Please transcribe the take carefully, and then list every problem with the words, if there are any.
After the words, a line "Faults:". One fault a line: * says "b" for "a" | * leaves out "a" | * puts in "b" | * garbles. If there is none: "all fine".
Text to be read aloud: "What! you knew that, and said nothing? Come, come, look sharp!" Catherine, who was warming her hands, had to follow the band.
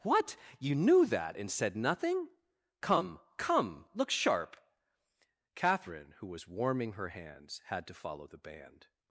"What! you knew that, and said nothing? Come, come, look sharp!" Catherine, who was warming her hands, had to follow the band.
Faults:
all fine